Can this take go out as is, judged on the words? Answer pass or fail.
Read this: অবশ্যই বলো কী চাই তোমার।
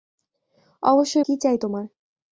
fail